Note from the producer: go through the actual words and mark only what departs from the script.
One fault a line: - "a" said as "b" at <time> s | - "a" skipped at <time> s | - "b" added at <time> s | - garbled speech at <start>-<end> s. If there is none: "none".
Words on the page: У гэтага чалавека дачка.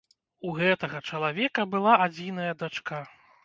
- "была адзіная" added at 1.8 s